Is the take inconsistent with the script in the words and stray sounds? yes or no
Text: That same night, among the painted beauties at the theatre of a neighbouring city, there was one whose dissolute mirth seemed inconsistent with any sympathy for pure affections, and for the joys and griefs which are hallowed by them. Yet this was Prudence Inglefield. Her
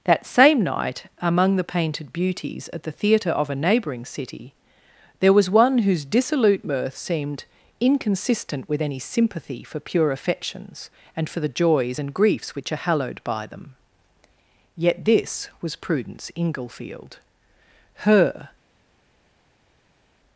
no